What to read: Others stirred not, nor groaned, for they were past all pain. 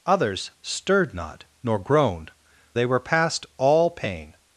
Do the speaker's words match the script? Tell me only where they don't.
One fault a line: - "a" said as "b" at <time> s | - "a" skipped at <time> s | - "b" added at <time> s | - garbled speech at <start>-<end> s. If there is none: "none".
- "for" skipped at 2.3 s